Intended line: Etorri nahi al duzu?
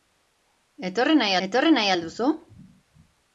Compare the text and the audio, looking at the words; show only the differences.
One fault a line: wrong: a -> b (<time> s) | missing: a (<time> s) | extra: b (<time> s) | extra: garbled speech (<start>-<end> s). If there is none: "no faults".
extra: etorri nahi (1.5 s)